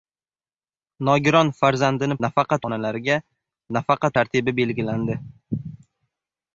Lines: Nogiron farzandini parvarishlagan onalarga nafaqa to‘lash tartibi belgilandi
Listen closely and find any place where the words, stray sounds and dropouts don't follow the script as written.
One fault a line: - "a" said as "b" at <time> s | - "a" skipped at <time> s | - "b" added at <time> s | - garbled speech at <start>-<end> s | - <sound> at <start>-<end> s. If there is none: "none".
- "parvarishlagan" said as "nafaqa" at 2.3 s
- "to‘lash" skipped at 4.1 s